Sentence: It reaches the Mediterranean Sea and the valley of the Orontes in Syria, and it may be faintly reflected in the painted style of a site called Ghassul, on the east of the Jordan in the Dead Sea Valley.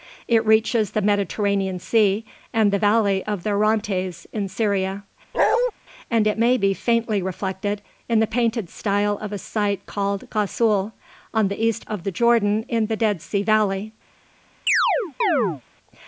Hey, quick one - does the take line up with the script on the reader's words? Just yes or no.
yes